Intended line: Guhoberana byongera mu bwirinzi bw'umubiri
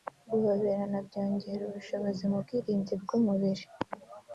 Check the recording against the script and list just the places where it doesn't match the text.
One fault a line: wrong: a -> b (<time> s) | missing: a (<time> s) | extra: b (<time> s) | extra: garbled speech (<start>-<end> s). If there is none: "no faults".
extra: ubushobozi (1.6 s)